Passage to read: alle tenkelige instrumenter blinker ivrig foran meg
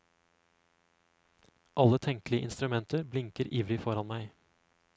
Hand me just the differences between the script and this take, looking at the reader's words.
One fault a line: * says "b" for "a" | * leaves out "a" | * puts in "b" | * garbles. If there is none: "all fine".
all fine